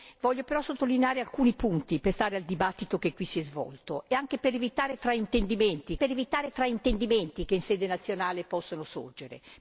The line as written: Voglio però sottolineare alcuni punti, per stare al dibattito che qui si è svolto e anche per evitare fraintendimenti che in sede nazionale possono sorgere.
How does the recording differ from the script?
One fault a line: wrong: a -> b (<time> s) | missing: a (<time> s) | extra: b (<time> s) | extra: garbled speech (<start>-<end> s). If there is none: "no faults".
extra: per evitare fraintendimenti (5.9 s)